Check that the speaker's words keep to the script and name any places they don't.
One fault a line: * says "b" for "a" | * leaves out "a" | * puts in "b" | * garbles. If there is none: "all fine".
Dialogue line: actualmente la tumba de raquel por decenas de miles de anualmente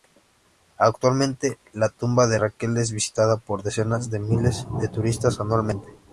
* puts in "es visitada"
* puts in "turistas"